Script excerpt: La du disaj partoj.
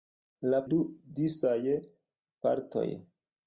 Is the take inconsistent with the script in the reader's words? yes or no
no